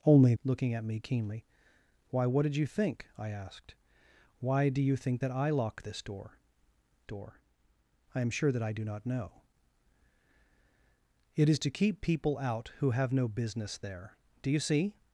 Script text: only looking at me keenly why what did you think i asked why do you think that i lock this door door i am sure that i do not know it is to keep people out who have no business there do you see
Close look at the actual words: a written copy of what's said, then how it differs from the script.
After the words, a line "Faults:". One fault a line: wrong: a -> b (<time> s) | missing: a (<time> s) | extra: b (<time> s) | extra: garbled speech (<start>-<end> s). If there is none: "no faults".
only looking at me keenly why what did you think i asked why do you think that i lock this door door i am sure that i do not know it is to keep people out who have no business there do you see
Faults:
no faults